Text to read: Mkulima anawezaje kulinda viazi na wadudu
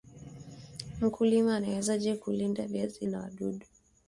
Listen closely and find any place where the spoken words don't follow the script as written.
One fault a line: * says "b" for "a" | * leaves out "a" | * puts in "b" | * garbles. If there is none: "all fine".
all fine